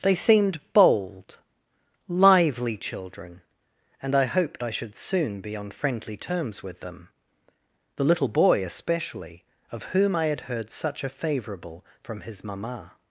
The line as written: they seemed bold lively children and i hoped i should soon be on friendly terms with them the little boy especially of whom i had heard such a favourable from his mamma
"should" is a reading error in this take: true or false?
false